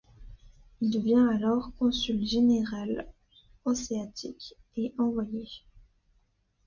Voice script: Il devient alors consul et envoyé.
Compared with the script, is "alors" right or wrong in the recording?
right